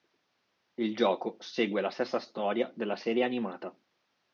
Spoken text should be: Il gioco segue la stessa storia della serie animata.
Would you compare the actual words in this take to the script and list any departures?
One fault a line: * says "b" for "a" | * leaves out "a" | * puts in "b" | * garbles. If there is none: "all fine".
all fine